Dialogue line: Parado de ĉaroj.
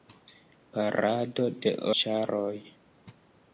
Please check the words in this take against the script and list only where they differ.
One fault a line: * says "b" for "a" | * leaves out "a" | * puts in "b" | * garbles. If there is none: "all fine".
all fine